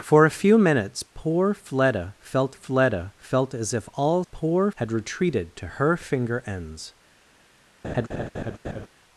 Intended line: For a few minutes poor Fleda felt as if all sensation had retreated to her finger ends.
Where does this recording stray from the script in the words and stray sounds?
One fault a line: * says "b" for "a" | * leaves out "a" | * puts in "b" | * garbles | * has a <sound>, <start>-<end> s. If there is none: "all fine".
* puts in "Fleda felt"
* says "poor" for "sensation"
* has a laugh, 7.8-8.9 s